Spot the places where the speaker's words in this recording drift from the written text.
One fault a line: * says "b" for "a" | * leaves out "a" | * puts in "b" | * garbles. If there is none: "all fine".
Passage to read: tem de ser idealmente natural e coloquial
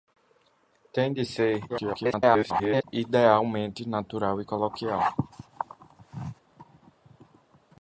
* garbles